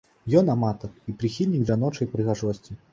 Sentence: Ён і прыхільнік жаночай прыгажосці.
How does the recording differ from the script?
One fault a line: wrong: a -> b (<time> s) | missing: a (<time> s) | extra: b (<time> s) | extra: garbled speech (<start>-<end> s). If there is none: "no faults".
extra: аматар (0.5 s)